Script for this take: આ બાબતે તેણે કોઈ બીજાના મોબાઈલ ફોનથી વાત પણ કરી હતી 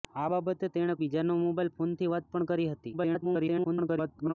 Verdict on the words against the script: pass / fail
fail